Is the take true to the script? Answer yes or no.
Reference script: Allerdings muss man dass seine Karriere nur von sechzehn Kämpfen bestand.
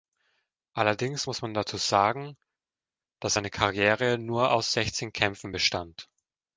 no